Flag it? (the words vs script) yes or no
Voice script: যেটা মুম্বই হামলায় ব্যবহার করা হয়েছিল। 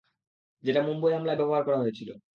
no